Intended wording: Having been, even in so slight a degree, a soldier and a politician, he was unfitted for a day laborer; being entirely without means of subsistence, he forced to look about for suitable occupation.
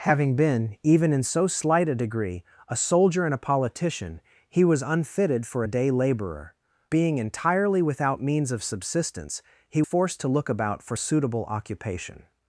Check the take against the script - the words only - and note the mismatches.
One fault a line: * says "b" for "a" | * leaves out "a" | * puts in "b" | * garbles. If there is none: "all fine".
all fine